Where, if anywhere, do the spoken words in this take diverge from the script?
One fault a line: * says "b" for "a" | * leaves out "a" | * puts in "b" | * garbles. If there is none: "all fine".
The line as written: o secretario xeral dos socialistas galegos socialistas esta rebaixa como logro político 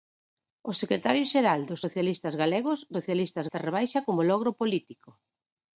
all fine